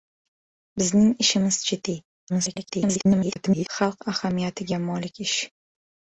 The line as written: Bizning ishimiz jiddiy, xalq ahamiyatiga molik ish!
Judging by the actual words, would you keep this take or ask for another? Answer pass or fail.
fail